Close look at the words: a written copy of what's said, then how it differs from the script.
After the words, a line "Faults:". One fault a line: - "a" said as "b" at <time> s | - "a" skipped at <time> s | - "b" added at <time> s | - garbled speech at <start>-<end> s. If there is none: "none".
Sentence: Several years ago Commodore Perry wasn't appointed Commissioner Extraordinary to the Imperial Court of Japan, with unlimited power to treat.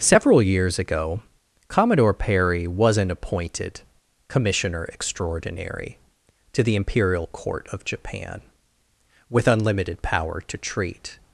Several years ago Commodore Perry wasn't appointed Commissioner Extraordinary to the Imperial Court of Japan, with unlimited power to treat.
Faults:
none